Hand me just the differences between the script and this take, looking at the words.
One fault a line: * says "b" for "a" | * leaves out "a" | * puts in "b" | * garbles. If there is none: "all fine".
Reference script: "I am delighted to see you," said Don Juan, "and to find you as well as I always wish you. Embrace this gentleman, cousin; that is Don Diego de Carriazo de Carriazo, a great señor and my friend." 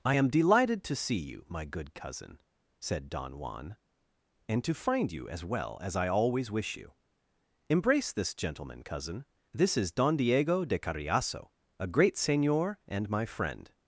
* puts in "my good cousin"
* says "this" for "that"
* leaves out "de Carriazo"